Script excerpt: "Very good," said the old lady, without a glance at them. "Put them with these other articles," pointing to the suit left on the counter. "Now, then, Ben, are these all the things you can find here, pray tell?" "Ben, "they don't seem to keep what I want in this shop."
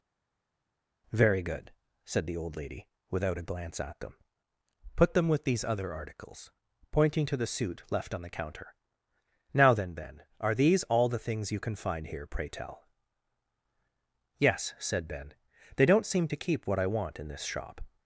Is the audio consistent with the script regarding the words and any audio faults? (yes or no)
no